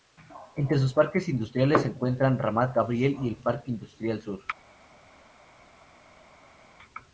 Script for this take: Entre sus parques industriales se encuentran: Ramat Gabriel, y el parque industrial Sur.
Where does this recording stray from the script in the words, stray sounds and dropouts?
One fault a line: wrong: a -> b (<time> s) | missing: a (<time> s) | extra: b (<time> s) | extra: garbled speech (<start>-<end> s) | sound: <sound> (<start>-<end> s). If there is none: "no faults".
no faults